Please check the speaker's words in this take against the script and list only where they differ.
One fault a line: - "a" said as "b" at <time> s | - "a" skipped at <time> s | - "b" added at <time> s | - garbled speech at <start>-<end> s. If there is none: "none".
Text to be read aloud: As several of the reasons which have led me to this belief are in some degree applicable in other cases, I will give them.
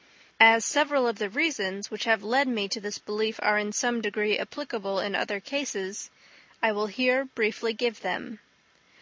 - "here briefly" added at 6.9 s